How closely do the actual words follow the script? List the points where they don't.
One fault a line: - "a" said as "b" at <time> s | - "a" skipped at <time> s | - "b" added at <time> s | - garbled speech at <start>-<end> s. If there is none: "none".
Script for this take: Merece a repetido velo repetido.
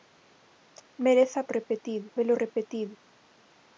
none